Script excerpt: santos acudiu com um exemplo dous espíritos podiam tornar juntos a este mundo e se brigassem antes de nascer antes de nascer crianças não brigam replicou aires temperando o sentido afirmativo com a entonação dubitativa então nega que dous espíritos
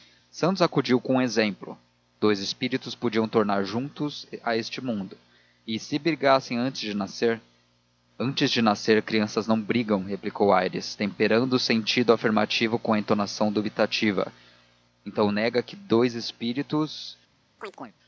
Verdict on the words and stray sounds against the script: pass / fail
fail